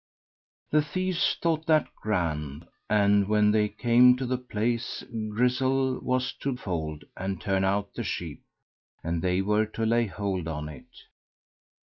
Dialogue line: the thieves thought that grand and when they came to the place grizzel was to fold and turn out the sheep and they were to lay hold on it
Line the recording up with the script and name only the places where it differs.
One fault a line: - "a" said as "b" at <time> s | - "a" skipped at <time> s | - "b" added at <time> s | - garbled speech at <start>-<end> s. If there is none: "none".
none